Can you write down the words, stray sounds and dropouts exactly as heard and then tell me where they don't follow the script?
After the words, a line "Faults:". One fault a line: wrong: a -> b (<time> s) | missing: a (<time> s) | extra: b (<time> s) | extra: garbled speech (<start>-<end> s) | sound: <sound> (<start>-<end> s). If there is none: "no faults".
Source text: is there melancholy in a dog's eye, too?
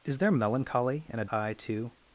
is there melancholy in a eye, too?
Faults:
missing: dog's (1.2 s)